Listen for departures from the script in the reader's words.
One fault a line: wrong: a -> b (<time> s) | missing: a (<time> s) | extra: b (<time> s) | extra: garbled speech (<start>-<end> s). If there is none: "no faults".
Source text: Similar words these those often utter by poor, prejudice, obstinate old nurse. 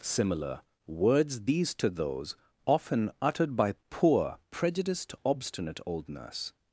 extra: to (1.7 s)
wrong: utter -> uttered (3.2 s)
wrong: prejudice -> prejudiced (4.5 s)